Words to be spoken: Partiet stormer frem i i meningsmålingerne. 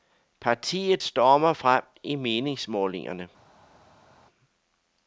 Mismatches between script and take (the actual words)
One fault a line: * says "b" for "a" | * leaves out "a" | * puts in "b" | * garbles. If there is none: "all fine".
* leaves out "i"